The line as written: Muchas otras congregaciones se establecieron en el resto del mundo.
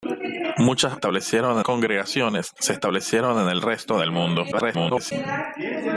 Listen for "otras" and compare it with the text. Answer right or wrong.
wrong